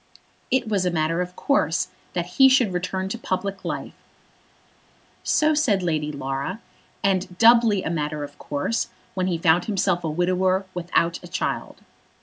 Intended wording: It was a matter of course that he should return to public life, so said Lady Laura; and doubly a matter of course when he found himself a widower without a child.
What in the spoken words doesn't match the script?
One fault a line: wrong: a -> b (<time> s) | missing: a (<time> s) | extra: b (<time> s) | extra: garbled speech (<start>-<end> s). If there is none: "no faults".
no faults